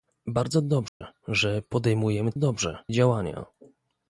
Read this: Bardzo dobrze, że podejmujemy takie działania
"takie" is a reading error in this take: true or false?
true